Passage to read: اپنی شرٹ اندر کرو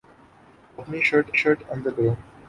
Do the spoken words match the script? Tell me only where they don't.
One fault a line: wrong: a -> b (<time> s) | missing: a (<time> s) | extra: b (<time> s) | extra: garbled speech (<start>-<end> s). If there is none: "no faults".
extra: شرٹ (1.4 s)